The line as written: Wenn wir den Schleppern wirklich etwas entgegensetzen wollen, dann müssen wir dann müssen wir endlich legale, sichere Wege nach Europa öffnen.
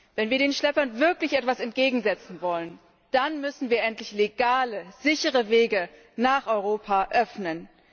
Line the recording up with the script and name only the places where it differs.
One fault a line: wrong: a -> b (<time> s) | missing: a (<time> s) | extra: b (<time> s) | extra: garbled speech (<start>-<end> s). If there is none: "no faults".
missing: dann müssen wir (3.8 s)